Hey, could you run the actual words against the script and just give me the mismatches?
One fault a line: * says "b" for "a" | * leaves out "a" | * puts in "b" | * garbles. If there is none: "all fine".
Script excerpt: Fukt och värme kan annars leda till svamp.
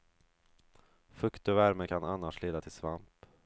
all fine